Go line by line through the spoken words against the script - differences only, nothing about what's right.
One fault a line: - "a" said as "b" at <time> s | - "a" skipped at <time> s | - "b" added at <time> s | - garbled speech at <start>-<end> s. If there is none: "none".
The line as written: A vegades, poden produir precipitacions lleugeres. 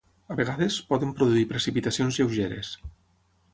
none